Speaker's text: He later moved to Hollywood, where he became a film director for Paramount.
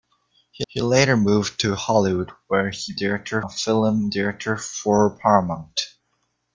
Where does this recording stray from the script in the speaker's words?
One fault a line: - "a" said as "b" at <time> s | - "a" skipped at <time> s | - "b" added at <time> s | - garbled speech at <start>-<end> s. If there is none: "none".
- "he" added at 0.7 s
- "became" said as "director" at 3.0 s